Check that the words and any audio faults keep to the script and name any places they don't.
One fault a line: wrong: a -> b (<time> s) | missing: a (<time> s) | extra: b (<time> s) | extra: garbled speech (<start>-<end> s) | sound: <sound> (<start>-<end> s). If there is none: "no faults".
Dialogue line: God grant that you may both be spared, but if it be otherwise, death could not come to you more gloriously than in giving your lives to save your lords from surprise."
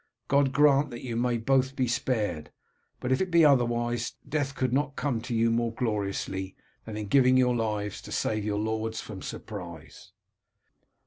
no faults